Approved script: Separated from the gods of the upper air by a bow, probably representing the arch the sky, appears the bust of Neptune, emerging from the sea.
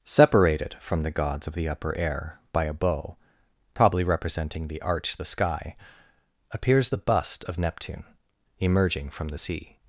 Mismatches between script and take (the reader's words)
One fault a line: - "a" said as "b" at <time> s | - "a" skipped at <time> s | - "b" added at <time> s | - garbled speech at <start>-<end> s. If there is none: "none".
none